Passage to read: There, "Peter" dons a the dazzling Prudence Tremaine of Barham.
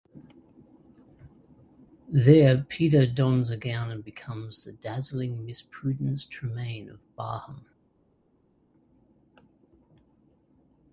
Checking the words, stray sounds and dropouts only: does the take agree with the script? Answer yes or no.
no